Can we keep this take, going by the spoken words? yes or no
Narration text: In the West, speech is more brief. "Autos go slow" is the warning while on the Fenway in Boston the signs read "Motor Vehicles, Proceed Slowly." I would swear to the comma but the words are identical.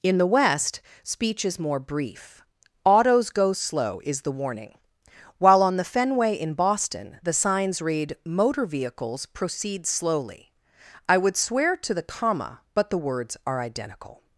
yes